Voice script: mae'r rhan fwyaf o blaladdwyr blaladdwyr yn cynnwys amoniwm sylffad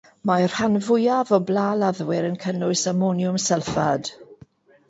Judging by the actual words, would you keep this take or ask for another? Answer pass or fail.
fail